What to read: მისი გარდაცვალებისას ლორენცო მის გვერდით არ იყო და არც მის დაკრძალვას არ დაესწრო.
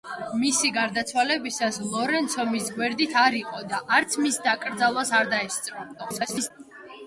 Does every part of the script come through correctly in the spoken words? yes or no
no